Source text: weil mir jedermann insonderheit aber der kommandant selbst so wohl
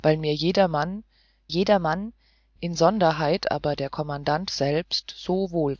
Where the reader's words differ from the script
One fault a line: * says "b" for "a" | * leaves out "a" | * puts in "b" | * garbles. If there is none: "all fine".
* puts in "jedermann"